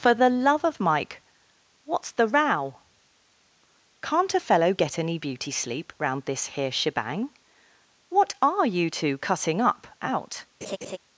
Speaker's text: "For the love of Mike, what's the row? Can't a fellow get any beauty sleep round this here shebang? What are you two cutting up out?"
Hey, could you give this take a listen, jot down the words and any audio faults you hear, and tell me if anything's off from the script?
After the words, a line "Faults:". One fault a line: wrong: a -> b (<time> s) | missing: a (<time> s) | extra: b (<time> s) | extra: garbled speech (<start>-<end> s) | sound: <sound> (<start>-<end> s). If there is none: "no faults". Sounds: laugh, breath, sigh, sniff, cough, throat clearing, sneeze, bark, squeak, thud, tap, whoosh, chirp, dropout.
"For the love of Mike, what's the row? Can't a fellow get any beauty sleep round this here shebang? What are you two cutting up out?"
Faults:
sound: laugh (10.6-11.0 s)